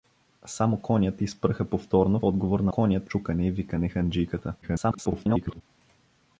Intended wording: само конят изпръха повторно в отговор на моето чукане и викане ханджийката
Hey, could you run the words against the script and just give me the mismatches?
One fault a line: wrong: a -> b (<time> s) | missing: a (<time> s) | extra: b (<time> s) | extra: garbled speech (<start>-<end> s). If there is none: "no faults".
missing: в (2.2 s)
wrong: моето -> конят (2.7 s)
extra: garbled speech (4.6-5.6 s)